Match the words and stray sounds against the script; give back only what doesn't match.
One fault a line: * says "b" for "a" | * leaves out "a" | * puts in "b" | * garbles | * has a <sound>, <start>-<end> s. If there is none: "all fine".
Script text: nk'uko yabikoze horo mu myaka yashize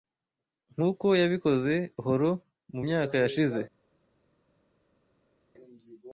all fine